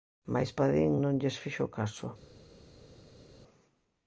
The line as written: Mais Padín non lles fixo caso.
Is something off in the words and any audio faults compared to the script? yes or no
no